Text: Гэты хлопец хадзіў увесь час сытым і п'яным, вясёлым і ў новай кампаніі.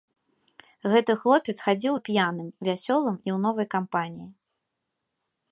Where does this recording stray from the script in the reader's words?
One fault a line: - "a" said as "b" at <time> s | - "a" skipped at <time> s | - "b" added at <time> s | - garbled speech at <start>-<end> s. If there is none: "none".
- "увесь час сытым" skipped at 1.9 s